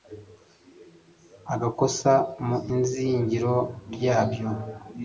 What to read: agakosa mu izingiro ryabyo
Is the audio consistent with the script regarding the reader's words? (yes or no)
yes